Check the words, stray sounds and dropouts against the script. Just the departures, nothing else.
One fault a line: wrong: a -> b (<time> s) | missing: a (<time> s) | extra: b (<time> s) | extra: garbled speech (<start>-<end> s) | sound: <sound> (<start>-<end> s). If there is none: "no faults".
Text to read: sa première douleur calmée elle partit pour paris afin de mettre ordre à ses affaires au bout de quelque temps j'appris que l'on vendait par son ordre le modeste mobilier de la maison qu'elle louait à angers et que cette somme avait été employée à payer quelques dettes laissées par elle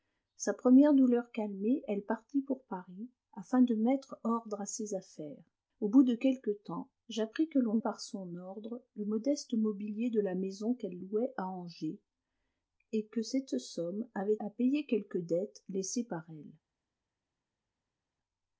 missing: vendait (7.8 s)
missing: été employée (14.4 s)